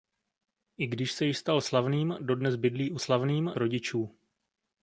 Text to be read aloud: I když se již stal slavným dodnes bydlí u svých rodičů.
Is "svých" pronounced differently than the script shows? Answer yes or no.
yes